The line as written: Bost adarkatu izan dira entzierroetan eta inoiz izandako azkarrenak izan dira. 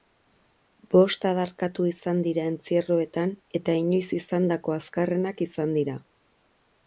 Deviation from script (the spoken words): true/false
false